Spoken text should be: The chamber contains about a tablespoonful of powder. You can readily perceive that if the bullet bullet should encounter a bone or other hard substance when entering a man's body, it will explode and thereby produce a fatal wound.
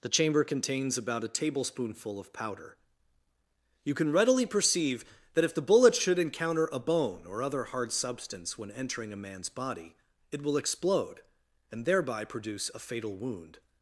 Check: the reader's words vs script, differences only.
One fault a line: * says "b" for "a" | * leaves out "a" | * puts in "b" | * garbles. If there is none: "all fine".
* leaves out "bullet"